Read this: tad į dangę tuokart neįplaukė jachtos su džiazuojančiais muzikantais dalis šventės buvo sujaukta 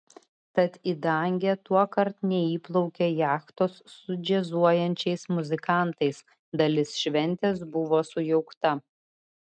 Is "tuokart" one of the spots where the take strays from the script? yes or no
no